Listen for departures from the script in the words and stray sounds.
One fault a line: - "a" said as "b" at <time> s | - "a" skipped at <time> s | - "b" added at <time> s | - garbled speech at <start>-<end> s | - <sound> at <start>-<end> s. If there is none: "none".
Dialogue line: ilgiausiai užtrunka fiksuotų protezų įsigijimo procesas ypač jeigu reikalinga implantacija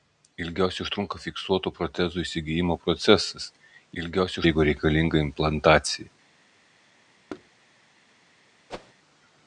- "ypač" said as "ilgiausiai" at 4.0 s
- thud at 7.3-7.5 s
- whoosh at 8.7-8.9 s